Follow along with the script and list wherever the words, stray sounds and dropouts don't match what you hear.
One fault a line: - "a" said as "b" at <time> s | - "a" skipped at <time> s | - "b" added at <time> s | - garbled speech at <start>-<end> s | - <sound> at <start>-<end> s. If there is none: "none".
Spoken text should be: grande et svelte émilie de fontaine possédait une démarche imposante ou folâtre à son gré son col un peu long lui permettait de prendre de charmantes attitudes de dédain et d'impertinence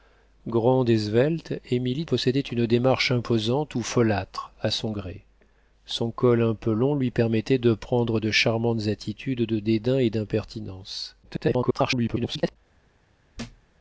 - "de fontaine" skipped at 2.0 s
- garbled speech at 11.2-12.6 s
- thud at 13.3-13.7 s